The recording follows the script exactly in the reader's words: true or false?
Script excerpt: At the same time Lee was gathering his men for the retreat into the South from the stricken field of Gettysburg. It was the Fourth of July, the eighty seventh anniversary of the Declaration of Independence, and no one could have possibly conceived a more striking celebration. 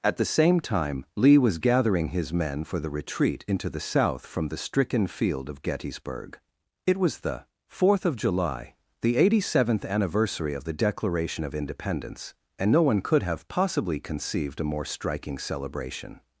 true